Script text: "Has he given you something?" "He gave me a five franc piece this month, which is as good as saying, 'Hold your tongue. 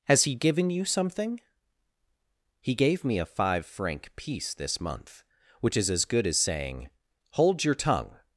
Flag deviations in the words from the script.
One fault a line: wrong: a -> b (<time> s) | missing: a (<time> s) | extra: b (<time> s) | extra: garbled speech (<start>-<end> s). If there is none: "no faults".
no faults